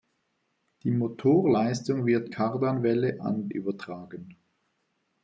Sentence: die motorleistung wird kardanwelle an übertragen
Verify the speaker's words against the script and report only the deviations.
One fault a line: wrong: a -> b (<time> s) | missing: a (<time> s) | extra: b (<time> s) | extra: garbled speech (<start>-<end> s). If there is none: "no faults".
no faults